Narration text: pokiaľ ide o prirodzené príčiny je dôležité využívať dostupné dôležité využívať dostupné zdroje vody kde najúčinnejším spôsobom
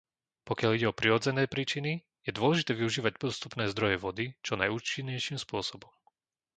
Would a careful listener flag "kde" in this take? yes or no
yes